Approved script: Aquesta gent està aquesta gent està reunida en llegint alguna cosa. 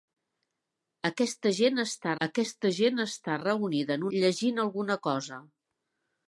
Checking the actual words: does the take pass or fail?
pass